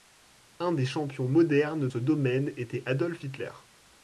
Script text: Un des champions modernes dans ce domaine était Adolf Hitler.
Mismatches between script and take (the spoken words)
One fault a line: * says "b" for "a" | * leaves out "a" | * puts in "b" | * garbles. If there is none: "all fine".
* leaves out "dans"